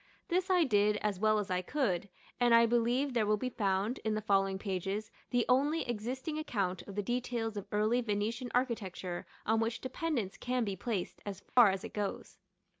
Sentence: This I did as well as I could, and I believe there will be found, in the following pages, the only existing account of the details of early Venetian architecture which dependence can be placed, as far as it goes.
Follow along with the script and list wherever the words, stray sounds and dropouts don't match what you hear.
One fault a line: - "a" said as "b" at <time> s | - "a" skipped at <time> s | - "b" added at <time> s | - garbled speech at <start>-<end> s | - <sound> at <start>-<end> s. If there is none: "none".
- "on" added at 9.5 s
- dropout at 11.5-11.6 s